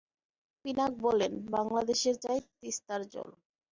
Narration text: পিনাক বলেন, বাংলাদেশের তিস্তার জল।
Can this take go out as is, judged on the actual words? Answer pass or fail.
fail